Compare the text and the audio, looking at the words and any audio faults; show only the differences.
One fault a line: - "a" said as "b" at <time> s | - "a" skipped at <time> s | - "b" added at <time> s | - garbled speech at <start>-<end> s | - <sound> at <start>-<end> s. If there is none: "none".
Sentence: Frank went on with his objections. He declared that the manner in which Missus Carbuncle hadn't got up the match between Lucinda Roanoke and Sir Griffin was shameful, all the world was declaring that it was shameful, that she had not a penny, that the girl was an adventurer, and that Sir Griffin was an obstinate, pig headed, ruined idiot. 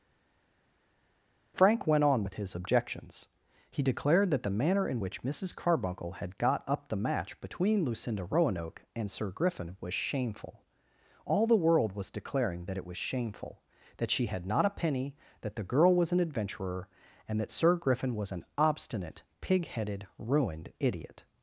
- "hadn't" said as "had" at 6.1 s